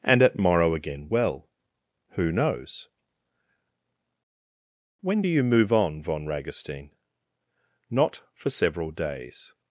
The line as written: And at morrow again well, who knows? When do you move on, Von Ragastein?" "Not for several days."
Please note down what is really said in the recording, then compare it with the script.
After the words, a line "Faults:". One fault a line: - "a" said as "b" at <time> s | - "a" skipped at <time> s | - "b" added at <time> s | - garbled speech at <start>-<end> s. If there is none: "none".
And at morrow again well, who knows? When do you move on, Von Ragastein?" "Not for several days."
Faults:
none